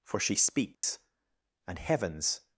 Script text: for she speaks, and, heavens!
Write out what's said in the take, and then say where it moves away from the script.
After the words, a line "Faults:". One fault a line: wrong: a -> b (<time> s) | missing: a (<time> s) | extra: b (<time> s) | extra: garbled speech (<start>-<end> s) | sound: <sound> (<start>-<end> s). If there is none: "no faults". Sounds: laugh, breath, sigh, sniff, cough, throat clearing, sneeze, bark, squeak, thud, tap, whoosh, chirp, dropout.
for she speaks, and, heavens!
Faults:
sound: dropout (0.7-0.8 s)